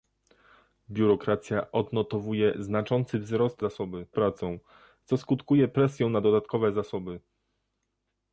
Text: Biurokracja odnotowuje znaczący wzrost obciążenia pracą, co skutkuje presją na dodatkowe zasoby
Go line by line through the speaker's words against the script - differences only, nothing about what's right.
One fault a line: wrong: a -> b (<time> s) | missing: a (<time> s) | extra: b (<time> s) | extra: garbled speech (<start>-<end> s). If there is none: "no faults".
wrong: obciążenia -> zasoby (3.6 s)